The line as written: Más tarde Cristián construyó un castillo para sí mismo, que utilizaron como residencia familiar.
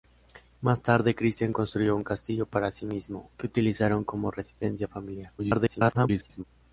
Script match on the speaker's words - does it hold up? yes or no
no